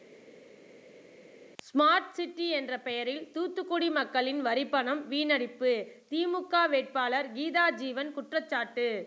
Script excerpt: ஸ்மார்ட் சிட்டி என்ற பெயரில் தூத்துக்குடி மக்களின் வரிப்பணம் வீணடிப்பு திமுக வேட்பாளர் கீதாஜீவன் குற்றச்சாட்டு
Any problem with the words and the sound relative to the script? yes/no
no